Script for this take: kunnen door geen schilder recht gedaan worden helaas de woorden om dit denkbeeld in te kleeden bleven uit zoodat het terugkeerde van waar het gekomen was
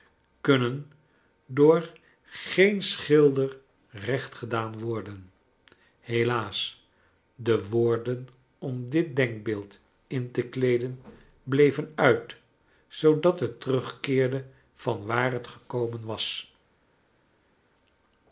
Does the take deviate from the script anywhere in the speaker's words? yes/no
no